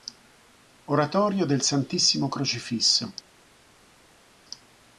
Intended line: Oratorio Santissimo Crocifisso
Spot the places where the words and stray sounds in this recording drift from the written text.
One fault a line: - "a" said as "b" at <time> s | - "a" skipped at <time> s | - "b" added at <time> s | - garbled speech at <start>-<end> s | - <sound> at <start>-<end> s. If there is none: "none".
- "del" added at 1.4 s